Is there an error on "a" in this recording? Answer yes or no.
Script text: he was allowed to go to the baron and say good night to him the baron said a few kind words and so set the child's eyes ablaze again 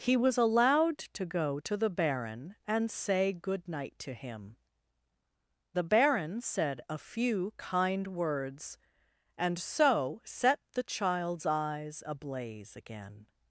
no